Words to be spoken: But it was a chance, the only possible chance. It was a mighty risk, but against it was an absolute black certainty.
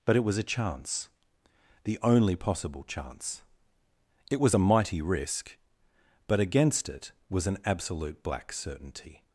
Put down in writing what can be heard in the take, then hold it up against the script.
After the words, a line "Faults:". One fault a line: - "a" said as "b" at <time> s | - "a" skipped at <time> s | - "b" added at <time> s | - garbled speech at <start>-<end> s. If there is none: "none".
But it was a chance, the only possible chance. It was a mighty risk, but against it was an absolute black certainty.
Faults:
none